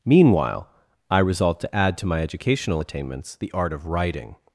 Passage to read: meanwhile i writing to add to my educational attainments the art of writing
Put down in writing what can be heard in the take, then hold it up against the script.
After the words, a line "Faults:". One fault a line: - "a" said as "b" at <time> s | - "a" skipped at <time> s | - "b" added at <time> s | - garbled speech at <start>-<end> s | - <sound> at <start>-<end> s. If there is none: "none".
meanwhile i resolved to add to my educational attainments the art of writing
Faults:
- "writing" said as "resolved" at 1.2 s